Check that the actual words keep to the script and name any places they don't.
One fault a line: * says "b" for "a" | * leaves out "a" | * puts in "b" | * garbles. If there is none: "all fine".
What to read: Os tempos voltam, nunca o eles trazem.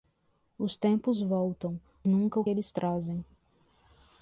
all fine